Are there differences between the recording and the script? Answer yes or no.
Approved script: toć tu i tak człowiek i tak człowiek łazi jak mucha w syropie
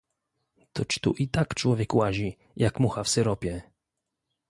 yes